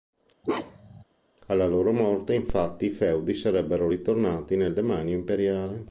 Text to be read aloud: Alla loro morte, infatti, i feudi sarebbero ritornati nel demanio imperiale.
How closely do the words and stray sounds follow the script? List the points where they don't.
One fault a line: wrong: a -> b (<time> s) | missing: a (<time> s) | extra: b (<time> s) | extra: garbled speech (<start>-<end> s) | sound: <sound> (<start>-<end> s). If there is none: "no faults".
sound: bark (0.4-1.0 s)